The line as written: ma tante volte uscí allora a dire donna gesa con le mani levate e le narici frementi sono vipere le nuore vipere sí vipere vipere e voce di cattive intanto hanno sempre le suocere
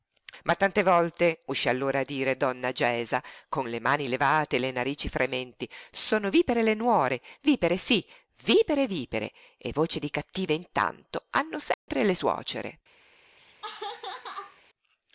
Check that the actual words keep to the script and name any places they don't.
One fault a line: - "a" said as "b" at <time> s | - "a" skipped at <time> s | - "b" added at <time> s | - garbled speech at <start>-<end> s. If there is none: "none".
none